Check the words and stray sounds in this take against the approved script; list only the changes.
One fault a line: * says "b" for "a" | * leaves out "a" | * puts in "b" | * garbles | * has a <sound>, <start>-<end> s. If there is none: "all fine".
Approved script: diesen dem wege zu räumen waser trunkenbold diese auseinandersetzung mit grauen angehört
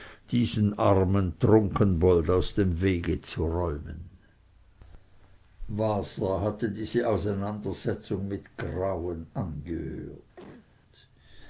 * puts in "armen trunkenbold aus"
* says "hatte" for "trunkenbold"
* has a cough, 10.4-10.7 s